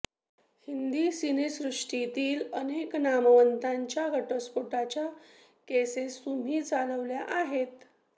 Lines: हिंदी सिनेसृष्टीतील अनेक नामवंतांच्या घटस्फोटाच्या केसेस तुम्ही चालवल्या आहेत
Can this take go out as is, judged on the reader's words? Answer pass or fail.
pass